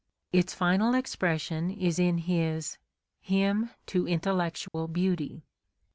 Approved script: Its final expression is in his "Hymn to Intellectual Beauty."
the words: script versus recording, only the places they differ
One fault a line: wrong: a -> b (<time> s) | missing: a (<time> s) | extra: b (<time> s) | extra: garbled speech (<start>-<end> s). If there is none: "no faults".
no faults